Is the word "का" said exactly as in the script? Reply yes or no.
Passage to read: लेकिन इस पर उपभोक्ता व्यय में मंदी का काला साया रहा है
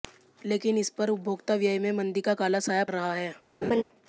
yes